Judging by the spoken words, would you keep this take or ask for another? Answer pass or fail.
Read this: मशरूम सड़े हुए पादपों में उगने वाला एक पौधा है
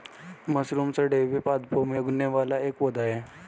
pass